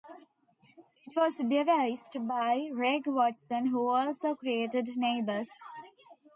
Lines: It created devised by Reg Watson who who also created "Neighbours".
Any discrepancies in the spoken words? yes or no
yes